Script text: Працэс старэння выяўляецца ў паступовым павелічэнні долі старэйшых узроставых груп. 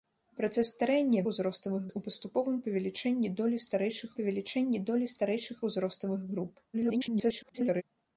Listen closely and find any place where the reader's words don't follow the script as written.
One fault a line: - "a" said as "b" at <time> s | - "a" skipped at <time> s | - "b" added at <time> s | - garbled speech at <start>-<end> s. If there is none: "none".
- "выяўляецца" said as "узроставых" at 1.3 s
- "павелічэнні долі старэйшых" added at 4.2 s
- garbled speech at 6.7-7.8 s